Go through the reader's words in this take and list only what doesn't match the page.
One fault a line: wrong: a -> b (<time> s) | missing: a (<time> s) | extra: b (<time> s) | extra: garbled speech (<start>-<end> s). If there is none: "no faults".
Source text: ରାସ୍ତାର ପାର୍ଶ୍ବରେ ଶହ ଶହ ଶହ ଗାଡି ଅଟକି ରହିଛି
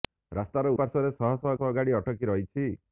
no faults